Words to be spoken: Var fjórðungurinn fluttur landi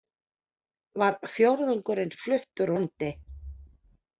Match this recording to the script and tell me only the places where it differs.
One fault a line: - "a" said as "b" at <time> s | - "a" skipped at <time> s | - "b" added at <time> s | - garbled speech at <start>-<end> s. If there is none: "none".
none